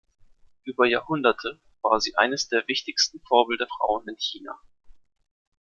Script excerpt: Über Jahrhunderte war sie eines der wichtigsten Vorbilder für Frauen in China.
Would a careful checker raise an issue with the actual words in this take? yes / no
yes